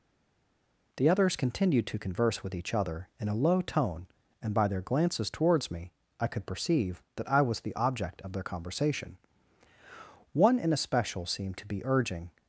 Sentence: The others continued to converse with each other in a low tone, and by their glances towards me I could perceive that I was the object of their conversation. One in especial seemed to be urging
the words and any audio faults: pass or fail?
pass